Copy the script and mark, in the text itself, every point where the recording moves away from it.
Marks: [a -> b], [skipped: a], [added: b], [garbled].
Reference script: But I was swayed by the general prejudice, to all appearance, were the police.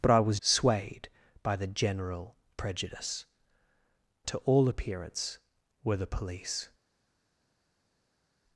But I was swayed by the general prejudice, to all appearance, were the police.